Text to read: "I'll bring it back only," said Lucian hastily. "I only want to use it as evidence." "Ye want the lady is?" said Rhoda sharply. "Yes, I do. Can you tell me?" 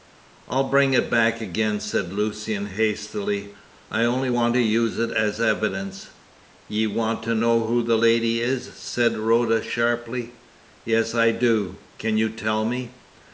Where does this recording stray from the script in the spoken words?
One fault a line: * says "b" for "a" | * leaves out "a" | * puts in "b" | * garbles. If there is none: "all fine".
* says "again" for "only"
* puts in "to know who"